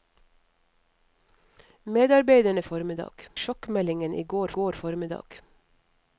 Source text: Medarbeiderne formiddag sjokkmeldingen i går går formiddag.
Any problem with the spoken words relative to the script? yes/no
no